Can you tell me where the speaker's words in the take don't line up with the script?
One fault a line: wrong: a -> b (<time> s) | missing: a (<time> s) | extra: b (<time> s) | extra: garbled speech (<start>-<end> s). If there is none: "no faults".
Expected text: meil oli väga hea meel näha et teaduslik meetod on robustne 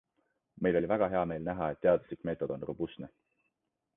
no faults